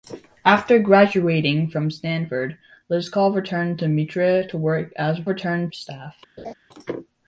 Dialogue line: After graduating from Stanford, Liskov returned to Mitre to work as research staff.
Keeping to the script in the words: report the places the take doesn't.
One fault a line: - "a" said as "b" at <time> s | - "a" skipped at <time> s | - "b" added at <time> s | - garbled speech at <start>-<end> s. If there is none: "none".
- "research" said as "returned" at 5.3 s